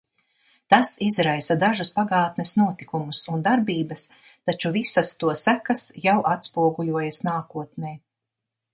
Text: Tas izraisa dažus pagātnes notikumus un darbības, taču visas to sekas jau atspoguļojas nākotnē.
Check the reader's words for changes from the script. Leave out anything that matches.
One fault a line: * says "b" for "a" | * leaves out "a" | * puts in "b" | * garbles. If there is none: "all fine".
all fine